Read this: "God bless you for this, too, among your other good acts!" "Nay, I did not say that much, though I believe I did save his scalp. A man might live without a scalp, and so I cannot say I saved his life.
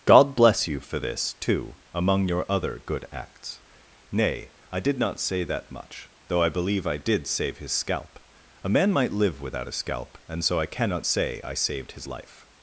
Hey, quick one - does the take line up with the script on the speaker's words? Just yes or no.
yes